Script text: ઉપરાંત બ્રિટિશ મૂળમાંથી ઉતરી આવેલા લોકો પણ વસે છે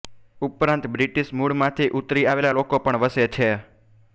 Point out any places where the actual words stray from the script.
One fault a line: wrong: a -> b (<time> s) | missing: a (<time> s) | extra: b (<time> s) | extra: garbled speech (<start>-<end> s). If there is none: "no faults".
no faults